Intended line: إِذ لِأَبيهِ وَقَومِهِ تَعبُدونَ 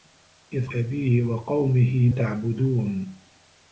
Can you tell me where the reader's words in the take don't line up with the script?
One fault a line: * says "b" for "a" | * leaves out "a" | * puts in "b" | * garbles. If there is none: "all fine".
all fine